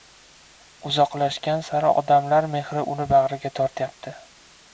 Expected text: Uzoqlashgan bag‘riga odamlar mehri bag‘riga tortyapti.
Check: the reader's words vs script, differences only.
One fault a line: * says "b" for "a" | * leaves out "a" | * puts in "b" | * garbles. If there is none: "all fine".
* says "sari" for "bag‘riga"
* puts in "uni"